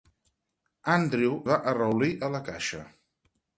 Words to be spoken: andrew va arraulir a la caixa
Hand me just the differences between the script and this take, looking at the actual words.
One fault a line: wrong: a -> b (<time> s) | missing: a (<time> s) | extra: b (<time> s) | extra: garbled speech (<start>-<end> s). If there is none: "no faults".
no faults